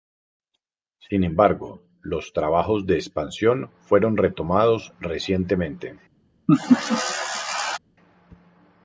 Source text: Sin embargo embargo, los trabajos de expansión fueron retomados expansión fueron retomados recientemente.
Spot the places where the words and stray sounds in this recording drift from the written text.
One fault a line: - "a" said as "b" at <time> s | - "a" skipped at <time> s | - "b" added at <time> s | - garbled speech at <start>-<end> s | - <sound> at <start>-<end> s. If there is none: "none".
- "embargo" skipped at 1.8 s
- "expansión fueron retomados" skipped at 4.9 s
- laugh at 6.5-7.8 s